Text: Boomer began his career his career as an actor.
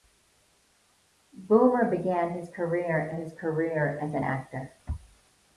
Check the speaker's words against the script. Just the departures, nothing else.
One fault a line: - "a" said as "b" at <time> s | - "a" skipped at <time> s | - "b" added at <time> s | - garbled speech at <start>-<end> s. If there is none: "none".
none